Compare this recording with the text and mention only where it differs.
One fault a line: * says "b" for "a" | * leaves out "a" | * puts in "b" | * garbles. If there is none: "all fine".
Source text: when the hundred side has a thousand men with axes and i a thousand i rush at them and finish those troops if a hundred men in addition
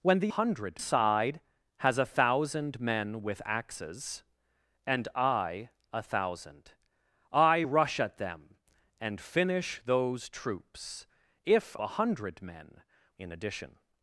all fine